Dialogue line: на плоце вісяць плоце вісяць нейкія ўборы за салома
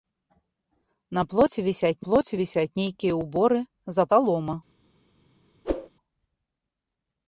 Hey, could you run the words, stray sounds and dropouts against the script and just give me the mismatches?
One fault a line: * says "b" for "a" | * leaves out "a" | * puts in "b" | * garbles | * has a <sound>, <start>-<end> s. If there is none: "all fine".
* has a whoosh, 5.6-5.9 s